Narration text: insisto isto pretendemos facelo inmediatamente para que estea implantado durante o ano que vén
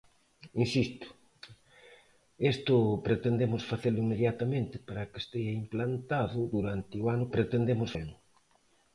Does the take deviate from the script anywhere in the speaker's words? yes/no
yes